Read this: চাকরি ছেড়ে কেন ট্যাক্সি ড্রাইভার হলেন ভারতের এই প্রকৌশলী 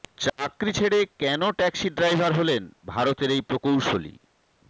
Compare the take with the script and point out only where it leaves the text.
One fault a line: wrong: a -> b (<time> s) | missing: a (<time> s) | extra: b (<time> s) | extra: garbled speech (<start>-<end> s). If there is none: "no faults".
no faults